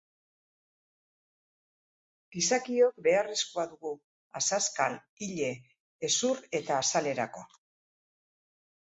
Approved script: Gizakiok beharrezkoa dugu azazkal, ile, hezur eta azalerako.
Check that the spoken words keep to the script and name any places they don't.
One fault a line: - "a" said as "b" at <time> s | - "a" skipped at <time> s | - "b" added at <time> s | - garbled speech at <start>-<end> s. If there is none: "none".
none